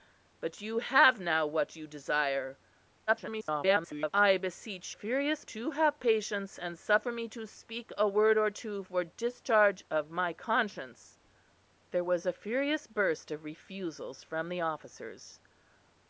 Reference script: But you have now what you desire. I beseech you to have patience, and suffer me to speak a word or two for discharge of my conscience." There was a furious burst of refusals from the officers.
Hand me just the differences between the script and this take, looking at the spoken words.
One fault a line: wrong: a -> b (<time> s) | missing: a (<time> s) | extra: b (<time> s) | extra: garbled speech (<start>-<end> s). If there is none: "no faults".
extra: garbled speech (3.1-4.1 s)
wrong: you -> furious (4.9 s)